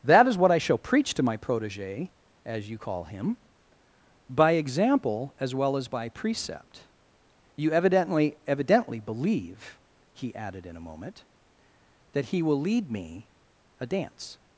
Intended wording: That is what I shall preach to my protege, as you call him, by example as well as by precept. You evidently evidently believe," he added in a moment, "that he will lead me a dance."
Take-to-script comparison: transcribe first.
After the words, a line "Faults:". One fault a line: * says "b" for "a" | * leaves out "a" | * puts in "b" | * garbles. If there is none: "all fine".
That is what I shall preach to my protege, as you call him, by example as well as by precept. You evidently evidently believe," he added in a moment, "that he will lead me a dance."
Faults:
all fine